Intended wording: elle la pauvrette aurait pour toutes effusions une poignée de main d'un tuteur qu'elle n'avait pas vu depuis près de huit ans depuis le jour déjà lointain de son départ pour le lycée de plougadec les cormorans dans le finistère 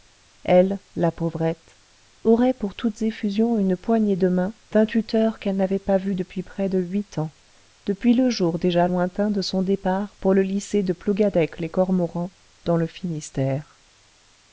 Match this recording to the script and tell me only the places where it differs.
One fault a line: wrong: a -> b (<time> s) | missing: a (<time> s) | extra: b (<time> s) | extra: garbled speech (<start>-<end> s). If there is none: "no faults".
no faults